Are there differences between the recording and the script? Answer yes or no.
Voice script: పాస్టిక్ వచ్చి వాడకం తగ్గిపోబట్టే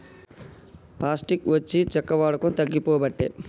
yes